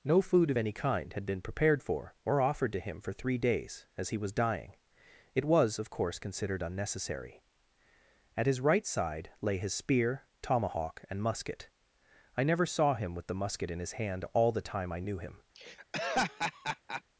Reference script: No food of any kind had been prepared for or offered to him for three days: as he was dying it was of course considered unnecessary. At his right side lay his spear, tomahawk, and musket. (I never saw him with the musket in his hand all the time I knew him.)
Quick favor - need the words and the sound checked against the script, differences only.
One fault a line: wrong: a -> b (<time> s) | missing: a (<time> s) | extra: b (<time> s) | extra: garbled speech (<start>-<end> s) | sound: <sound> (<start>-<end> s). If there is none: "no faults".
sound: laugh (15.5-17.0 s)